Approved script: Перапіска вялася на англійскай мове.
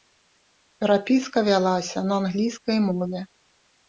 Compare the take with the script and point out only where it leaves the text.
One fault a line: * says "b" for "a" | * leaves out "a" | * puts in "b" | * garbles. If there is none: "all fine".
all fine